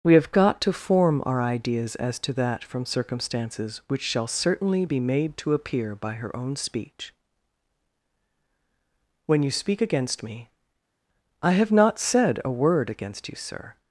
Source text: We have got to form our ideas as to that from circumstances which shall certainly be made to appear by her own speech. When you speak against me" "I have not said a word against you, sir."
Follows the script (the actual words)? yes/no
yes